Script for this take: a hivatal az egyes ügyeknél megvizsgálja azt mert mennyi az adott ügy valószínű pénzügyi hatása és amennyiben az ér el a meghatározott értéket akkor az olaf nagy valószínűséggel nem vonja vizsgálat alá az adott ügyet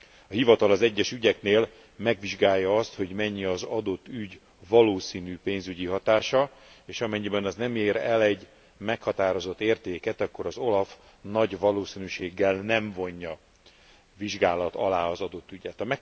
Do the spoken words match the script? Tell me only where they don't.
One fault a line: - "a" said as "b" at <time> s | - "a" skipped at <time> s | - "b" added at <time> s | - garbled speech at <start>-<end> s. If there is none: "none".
- "mert" said as "hogy" at 2.9 s
- "nem" added at 7.6 s
- "a" said as "egy" at 8.2 s